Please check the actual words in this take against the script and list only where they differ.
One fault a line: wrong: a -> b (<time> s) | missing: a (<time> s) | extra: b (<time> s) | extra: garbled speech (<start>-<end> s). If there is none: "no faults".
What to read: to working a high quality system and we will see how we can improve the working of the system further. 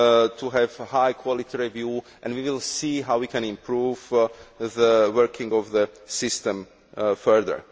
wrong: working -> have (0.5 s)
wrong: system -> review (1.6 s)